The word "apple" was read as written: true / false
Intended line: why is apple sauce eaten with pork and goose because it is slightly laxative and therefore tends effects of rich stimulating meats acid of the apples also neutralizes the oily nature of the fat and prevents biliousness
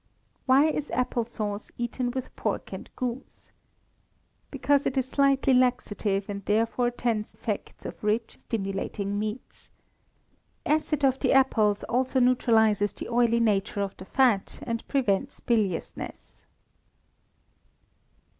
true